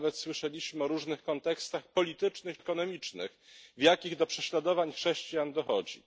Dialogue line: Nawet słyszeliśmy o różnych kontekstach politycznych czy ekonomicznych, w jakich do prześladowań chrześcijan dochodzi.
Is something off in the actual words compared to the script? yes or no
yes